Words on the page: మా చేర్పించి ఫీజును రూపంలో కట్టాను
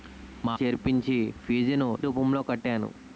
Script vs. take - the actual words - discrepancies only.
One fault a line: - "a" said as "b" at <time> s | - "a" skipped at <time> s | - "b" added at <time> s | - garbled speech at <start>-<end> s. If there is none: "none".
none